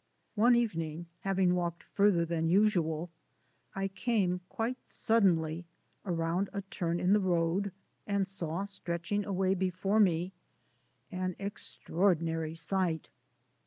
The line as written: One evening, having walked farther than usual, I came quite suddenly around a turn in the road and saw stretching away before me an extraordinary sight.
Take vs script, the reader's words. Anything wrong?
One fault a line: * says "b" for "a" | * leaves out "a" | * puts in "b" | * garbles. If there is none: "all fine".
all fine